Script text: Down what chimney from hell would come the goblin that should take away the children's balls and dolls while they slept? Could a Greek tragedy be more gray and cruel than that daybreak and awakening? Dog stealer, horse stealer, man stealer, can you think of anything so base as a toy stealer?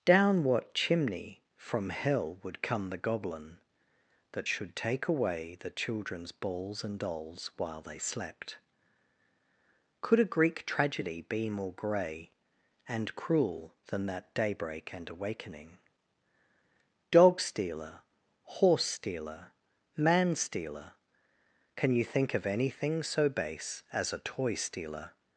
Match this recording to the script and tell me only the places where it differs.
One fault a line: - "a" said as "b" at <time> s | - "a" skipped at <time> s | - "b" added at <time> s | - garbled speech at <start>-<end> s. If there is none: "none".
none